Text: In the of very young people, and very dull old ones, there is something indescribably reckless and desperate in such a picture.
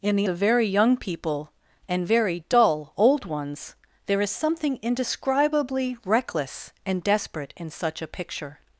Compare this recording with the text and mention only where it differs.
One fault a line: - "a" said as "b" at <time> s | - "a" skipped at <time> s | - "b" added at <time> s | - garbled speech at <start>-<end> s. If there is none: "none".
none